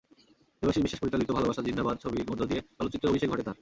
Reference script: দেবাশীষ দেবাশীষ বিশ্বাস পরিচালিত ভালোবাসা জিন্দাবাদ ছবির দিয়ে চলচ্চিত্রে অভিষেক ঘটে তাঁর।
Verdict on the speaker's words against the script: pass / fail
fail